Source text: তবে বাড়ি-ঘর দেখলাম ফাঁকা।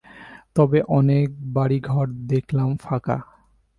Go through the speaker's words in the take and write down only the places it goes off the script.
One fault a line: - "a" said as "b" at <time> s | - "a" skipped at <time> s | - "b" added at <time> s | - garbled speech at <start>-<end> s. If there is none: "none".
- "অনেক" added at 0.9 s